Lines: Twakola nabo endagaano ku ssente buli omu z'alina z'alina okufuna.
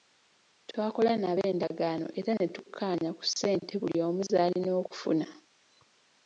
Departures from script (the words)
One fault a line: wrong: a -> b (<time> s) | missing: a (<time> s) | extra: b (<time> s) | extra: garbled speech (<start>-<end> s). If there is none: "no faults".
extra: era ne tukkaanya (2.2 s)
missing: z'alina (4.7 s)